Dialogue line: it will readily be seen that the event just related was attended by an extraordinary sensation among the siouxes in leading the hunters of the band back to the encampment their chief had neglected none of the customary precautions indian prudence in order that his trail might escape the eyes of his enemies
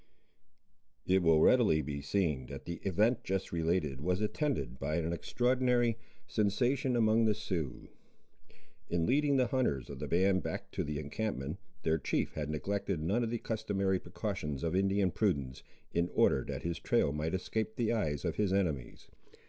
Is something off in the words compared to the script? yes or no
yes